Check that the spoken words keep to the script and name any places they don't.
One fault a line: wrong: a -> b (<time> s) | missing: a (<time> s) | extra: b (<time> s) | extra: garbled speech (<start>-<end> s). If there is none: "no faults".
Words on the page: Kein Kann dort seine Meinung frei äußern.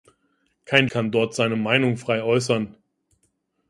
no faults